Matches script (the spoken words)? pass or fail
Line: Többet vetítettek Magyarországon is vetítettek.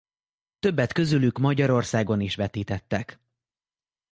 fail